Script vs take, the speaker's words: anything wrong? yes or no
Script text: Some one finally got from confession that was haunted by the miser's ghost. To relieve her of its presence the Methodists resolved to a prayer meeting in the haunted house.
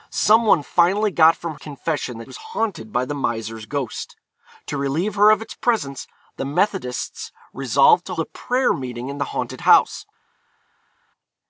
no